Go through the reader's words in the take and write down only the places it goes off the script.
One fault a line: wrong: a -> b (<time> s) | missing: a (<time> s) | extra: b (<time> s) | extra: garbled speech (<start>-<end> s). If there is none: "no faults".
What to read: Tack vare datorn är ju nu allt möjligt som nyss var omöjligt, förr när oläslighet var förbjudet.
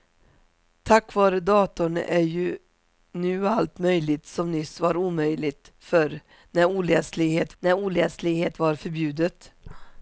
extra: när oläslighet (7.6 s)